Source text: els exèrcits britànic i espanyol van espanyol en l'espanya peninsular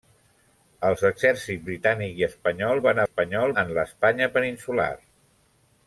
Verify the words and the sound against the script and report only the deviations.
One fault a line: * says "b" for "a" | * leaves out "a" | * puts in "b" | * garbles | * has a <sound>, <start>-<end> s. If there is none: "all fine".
all fine